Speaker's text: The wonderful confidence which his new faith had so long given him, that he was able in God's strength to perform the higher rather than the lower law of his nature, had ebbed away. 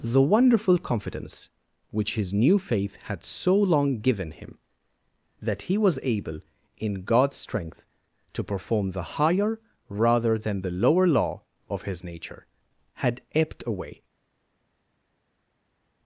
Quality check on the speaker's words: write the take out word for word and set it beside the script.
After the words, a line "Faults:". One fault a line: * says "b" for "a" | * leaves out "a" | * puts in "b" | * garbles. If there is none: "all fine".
The wonderful confidence which his new faith had so long given him, that he was able in God's strength to perform the higher rather than the lower law of his nature, had ebbed away.
Faults:
all fine